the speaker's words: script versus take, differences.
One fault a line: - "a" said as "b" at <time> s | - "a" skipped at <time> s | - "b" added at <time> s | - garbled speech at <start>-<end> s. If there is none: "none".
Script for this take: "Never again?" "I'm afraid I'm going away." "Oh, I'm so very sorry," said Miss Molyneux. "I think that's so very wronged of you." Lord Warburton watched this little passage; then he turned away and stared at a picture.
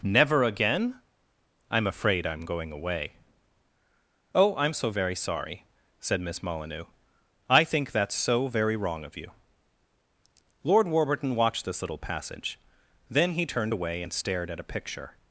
- "wronged" said as "wrong" at 8.8 s